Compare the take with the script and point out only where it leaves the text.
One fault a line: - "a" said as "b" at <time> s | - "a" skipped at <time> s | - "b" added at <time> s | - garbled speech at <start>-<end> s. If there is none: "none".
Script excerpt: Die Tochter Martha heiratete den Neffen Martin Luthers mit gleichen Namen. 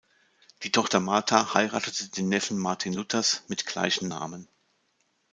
none